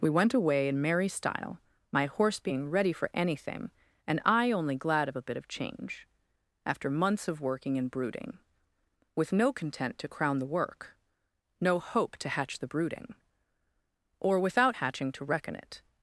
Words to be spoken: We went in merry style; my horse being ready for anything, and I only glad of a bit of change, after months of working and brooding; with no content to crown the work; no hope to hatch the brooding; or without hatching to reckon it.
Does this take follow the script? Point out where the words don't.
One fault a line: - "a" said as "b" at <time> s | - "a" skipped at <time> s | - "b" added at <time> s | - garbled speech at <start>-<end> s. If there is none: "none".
- "away" added at 0.3 s